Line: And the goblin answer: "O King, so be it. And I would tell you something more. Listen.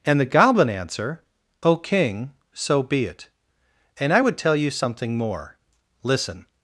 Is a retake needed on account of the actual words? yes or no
no